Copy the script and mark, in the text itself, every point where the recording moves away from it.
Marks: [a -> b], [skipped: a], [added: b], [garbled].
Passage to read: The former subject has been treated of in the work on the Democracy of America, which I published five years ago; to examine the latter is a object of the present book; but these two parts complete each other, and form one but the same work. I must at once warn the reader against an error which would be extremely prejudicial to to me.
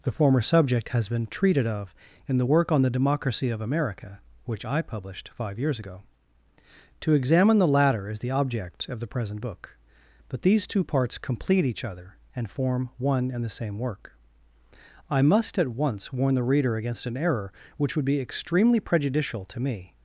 The former subject has been treated of in the work on the Democracy of America, which I published five years ago; to examine the latter is [a -> the] object of the present book; but these two parts complete each other, and form one [but -> and] the same work. I must at once warn the reader against an error which would be extremely prejudicial to [skipped: to] me.